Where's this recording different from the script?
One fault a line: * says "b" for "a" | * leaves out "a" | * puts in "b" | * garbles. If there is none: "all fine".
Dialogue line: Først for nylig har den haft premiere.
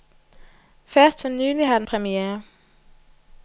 * leaves out "haft"